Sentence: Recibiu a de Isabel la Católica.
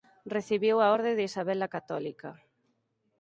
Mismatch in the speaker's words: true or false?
true